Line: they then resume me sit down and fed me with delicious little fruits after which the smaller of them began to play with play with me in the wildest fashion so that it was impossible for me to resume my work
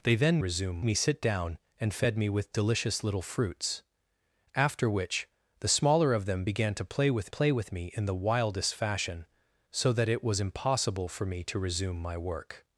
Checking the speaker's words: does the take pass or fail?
pass